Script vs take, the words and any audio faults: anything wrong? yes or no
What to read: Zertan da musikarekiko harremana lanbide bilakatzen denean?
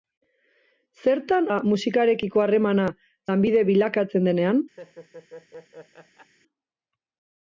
yes